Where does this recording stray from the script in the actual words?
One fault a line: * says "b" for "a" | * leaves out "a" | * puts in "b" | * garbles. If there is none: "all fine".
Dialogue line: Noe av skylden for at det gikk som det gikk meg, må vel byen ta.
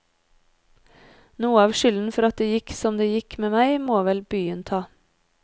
* puts in "med"